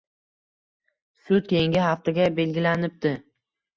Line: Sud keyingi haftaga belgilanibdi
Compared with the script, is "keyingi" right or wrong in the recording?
right